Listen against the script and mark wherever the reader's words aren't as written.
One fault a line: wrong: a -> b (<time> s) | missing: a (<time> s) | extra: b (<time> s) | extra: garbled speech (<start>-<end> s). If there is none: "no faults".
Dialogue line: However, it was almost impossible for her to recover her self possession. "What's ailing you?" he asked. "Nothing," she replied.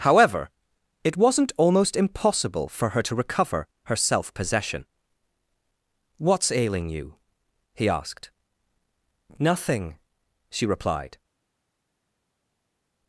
wrong: was -> wasn't (1.1 s)